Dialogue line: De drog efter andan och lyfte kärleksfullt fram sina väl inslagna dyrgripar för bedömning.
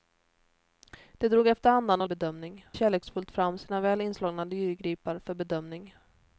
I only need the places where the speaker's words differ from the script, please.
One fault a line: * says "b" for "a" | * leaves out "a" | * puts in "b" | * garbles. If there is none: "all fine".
* says "bedömning" for "lyfte"